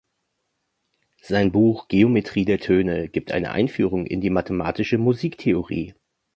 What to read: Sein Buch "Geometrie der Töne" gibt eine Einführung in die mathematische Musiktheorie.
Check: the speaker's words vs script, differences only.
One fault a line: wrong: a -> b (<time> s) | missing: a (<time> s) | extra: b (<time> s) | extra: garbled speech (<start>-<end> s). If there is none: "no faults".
no faults